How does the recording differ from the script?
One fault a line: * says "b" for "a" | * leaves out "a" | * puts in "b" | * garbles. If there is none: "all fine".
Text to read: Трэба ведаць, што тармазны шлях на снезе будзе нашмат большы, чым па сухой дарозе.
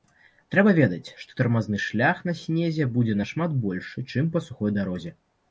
all fine